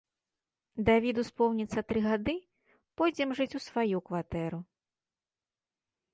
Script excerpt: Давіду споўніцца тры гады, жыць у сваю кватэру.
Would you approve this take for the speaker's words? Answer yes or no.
no